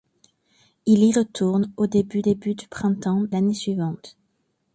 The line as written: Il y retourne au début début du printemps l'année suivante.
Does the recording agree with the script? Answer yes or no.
yes